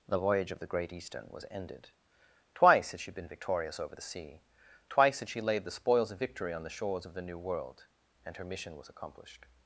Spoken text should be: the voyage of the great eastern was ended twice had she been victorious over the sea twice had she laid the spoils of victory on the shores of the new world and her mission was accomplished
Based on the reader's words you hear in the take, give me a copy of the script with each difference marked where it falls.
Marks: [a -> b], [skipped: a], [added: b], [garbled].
the voyage of the great eastern was ended twice had she been victorious over the sea twice had she laid the spoils of victory on the shores of the new world and her mission was accomplished